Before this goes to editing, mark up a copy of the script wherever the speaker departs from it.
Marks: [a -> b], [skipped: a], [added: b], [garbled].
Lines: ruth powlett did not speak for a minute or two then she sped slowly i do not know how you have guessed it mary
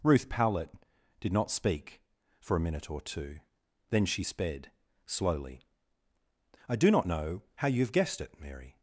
ruth powlett did not speak for a minute or two then she sped slowly i do not know how you have guessed it mary